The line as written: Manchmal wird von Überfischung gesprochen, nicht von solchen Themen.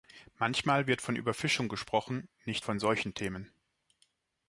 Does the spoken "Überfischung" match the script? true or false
true